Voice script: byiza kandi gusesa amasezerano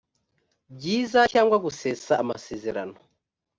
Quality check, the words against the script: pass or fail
fail